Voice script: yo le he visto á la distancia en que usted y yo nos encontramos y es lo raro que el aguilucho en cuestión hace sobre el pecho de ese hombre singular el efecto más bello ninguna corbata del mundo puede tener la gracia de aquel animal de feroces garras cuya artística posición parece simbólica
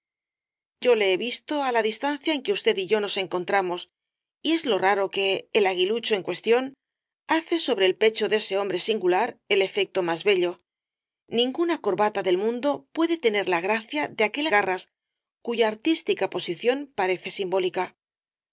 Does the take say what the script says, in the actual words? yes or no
no